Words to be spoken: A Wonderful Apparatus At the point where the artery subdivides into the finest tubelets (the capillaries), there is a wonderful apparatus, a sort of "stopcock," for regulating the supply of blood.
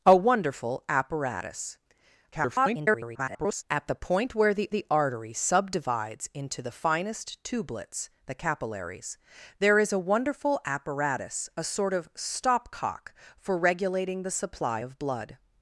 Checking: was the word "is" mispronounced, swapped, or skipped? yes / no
no